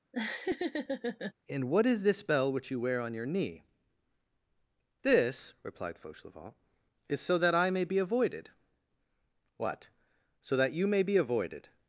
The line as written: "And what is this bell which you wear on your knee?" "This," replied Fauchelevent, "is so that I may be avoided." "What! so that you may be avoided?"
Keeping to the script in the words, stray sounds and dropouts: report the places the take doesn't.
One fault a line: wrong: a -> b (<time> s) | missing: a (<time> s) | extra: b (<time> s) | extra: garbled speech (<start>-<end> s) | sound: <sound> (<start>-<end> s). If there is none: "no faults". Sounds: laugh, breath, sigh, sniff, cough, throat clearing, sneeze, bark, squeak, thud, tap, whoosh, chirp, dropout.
sound: laugh (0.1-1.3 s)